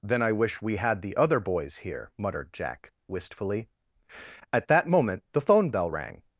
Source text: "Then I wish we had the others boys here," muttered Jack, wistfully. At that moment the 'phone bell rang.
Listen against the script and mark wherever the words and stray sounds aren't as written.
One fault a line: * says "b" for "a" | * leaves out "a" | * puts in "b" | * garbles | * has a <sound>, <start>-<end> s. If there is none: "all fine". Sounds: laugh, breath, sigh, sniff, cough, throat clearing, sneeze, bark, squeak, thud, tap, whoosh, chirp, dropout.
* says "other" for "others"